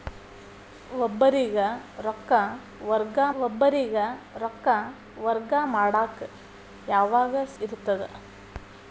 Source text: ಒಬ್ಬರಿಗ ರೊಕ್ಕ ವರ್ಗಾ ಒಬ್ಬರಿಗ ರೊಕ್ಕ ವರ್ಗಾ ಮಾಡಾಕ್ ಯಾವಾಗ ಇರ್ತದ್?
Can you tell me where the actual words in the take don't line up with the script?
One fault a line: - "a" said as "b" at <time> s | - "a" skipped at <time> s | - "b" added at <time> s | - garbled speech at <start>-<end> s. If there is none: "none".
none